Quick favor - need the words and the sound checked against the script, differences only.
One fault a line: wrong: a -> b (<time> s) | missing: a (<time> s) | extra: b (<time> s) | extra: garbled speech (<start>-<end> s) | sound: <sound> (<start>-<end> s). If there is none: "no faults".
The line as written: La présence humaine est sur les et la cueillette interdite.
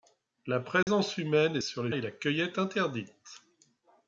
sound: dropout (0.8-0.9 s)